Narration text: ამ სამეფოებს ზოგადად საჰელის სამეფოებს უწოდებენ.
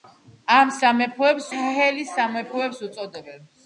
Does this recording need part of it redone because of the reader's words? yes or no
yes